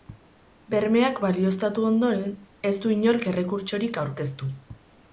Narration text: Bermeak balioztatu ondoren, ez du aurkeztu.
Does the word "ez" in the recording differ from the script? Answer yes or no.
no